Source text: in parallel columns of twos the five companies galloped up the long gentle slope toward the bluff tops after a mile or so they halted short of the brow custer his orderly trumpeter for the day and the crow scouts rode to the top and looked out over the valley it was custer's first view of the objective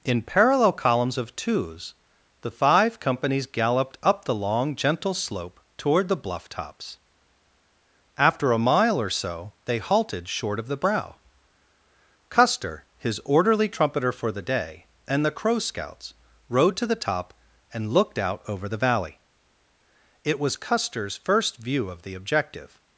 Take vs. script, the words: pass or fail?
pass